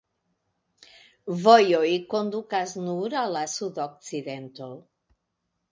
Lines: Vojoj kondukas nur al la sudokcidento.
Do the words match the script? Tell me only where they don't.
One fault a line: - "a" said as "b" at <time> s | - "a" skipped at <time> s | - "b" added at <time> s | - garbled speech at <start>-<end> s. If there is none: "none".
none